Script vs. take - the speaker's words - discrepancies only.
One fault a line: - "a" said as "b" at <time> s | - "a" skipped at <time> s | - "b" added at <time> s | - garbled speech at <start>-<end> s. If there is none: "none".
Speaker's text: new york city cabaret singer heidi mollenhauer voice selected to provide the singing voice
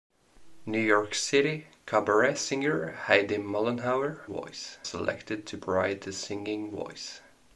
none